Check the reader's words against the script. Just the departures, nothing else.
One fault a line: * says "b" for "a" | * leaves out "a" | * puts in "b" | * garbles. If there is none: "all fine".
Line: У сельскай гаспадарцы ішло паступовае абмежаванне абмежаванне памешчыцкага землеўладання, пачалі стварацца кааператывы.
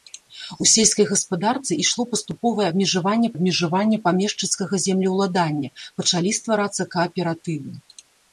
all fine